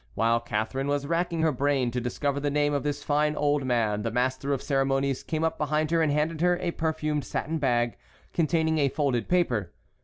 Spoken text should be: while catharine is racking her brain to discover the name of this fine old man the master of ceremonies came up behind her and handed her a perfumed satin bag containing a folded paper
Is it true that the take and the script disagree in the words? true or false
true